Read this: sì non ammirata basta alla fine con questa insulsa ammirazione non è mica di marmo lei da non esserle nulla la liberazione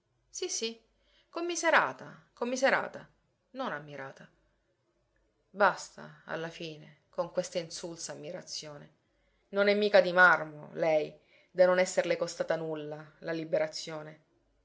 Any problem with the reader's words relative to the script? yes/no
yes